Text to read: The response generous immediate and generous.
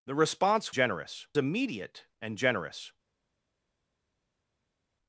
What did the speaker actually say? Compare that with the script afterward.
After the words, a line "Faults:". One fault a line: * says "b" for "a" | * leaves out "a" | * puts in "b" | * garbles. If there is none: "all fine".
The response generous immediate and generous.
Faults:
all fine